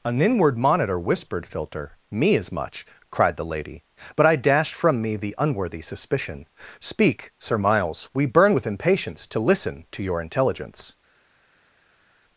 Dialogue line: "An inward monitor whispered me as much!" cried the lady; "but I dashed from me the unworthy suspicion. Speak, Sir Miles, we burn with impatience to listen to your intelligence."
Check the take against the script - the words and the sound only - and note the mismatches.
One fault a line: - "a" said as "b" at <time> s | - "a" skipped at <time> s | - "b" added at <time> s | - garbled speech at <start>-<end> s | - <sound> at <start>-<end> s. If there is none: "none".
- "filter" added at 1.4 s